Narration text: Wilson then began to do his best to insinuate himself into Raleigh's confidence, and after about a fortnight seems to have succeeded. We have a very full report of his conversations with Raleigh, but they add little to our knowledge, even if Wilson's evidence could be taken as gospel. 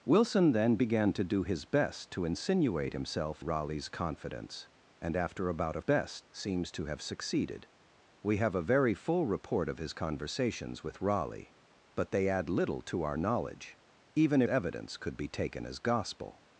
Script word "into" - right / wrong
wrong